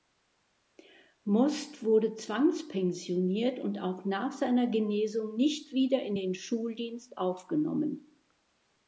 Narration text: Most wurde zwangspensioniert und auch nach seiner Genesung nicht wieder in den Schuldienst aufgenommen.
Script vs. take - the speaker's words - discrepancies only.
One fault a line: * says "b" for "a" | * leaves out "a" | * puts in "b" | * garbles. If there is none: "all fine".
all fine